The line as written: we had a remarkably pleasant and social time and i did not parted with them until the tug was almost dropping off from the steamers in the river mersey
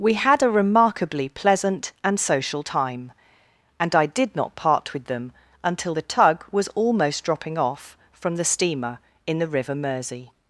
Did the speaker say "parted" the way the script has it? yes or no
no